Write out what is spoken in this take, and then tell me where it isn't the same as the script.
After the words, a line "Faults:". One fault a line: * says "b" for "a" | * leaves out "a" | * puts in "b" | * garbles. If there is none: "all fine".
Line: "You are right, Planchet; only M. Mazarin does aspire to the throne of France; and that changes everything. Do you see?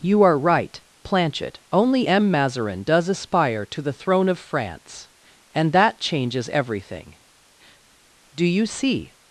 "You are right, Planchet; only M. Mazarin does aspire to the throne of France; and that changes everything. Do you see?
Faults:
all fine